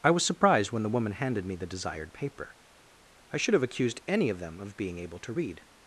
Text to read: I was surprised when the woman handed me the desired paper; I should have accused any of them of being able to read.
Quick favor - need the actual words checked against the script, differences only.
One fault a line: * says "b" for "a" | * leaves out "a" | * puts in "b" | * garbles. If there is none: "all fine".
all fine